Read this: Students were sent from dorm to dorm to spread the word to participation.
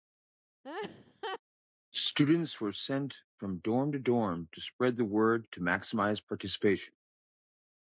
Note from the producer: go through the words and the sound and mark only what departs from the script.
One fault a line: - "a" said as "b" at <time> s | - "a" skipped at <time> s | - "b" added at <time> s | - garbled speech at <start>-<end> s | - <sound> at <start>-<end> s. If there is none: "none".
- laugh at 0.6-1.4 s
- "maximize" added at 5.6 s